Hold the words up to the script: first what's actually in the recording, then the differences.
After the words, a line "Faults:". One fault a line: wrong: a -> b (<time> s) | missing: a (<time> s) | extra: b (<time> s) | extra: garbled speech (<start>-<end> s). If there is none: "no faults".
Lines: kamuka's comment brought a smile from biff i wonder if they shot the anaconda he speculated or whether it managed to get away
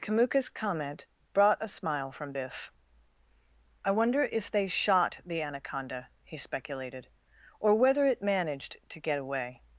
kamuka's comment brought a smile from biff i wonder if they shot the anaconda he speculated or whether it managed to get away
Faults:
no faults